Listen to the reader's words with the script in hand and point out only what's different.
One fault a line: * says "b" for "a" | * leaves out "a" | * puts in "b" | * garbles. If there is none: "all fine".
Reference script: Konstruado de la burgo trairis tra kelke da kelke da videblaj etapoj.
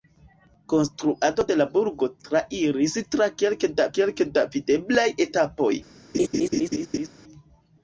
all fine